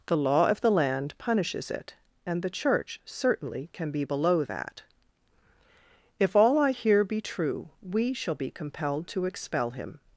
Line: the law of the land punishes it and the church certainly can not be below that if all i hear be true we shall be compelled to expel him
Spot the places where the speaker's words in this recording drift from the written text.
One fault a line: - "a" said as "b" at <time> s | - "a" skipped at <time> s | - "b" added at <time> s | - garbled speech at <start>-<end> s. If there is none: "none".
- "not" skipped at 3.9 s